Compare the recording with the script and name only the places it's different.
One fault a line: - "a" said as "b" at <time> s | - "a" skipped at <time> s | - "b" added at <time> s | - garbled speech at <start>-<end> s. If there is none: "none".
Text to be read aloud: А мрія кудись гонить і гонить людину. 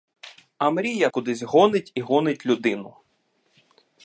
none